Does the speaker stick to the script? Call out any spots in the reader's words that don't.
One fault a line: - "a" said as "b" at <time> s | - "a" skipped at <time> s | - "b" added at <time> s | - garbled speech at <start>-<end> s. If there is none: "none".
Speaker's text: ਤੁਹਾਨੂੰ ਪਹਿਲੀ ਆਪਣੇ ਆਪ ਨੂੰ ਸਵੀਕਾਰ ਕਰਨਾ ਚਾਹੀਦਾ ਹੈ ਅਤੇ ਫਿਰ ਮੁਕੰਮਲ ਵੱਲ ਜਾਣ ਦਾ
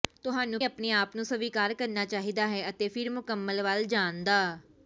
- "ਪਹਿਲੀ" skipped at 0.6 s